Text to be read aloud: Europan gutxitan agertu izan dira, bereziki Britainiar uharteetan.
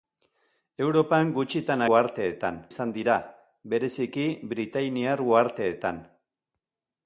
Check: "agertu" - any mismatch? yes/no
yes